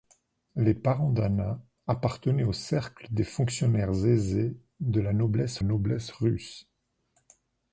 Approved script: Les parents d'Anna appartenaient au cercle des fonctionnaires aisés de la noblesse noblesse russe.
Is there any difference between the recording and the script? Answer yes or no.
no